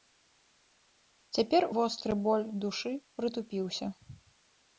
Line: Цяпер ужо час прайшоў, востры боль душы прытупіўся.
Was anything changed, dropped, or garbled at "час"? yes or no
yes